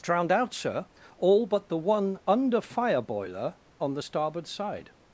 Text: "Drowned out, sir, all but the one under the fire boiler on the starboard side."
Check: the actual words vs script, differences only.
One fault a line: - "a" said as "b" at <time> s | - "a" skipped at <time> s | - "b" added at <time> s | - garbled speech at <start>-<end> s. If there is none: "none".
- "the" skipped at 2.6 s